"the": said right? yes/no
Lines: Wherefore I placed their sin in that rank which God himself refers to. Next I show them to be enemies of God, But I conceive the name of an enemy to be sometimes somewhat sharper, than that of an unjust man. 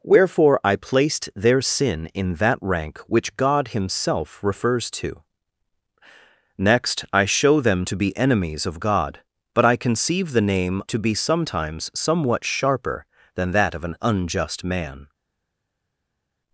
yes